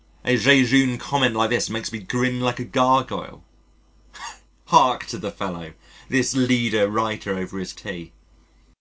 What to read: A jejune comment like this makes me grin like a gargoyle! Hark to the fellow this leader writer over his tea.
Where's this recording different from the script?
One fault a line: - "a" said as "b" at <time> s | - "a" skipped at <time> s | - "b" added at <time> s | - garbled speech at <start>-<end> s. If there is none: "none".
none